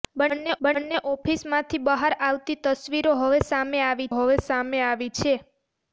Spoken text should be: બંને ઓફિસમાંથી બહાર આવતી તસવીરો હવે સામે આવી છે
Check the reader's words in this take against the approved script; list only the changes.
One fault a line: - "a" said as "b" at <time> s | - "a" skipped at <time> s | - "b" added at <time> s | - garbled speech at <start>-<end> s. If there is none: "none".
- "બંને" added at 0.6 s
- "હવે સામે આવી" added at 4.1 s